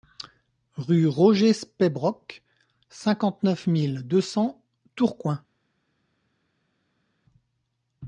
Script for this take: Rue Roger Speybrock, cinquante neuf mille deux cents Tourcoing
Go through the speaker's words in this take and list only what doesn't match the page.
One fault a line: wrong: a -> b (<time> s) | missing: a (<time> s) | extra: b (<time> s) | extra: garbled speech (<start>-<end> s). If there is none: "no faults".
no faults